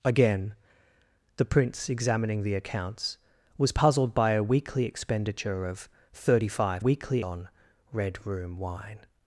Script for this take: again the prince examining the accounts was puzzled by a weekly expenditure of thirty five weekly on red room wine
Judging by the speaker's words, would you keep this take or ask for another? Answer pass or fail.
pass